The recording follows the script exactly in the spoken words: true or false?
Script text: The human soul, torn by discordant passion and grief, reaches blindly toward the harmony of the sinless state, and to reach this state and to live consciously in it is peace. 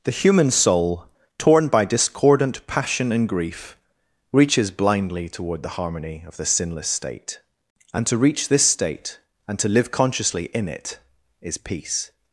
true